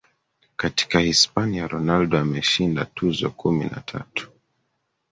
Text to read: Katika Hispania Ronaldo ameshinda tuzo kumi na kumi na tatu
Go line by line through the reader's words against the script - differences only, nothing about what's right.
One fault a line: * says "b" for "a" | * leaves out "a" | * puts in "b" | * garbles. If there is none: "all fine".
* leaves out "kumi na"